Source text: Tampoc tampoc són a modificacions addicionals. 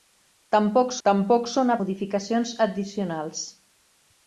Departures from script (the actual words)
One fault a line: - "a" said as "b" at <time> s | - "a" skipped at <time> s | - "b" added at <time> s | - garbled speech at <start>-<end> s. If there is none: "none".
none